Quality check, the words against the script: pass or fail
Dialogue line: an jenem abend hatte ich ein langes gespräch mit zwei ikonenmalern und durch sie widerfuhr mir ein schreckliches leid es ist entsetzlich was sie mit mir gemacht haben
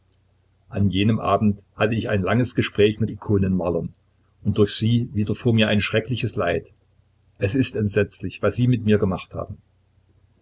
fail